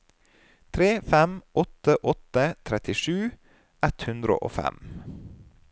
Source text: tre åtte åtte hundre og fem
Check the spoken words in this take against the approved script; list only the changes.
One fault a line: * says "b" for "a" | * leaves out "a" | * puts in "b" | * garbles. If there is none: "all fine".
* puts in "fem"
* puts in "trettisju ett"